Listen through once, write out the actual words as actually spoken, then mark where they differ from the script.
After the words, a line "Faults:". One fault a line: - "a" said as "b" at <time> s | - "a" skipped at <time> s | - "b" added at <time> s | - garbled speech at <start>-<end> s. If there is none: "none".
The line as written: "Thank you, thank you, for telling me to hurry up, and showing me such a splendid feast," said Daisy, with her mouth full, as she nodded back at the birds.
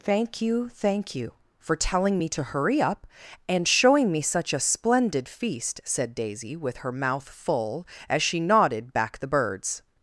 "Thank you, thank you, for telling me to hurry up, and showing me such a splendid feast," said Daisy, with her mouth full, as she nodded back the birds.
Faults:
- "at" skipped at 9.2 s